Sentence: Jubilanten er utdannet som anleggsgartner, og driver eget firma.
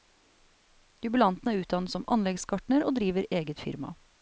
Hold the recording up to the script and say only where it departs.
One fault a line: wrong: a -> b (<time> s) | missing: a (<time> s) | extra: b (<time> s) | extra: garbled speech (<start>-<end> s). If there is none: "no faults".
no faults